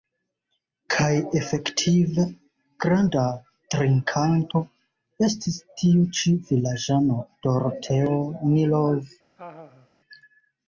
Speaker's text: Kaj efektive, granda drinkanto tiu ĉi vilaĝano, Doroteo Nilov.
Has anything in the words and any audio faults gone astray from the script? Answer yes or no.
yes